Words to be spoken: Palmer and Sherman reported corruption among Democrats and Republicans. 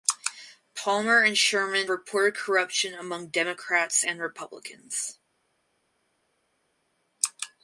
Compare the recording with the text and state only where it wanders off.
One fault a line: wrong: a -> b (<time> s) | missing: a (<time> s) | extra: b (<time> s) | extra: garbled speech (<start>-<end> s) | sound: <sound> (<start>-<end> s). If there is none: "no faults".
no faults